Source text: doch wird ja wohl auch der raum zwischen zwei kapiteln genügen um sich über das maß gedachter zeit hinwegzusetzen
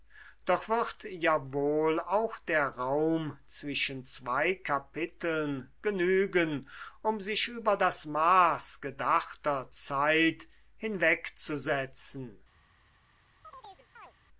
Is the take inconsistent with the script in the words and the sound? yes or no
yes